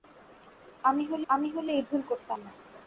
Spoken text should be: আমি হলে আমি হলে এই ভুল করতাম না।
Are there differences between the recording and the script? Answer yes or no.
no